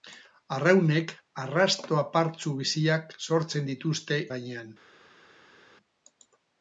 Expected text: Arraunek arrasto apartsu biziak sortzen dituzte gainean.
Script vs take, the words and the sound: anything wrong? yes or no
no